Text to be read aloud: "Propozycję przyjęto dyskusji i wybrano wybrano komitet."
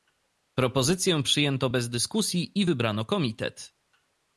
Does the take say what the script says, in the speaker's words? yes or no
no